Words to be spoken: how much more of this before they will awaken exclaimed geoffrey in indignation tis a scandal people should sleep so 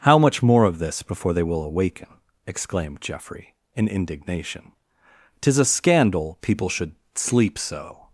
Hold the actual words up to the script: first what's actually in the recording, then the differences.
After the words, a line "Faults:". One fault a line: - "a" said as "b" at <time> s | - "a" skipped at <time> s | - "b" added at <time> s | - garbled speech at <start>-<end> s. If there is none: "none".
how much more of this before they will awaken exclaimed geoffrey in indignation tis a scandal people should sleep so
Faults:
none